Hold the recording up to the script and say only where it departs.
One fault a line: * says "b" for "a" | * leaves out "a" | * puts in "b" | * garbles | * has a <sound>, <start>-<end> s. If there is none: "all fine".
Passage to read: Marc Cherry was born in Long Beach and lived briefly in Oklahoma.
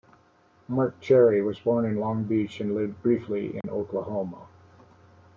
* has a dropout, 3.6-3.6 s